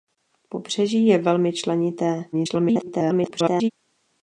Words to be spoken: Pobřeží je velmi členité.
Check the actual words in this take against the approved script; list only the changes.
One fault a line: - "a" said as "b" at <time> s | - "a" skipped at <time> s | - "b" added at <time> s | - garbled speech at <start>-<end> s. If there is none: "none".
- garbled speech at 2.3-3.7 s